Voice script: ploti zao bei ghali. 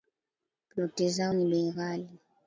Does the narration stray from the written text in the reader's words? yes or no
yes